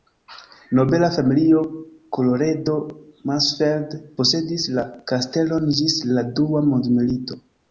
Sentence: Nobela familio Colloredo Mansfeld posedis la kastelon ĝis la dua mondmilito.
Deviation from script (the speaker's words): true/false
false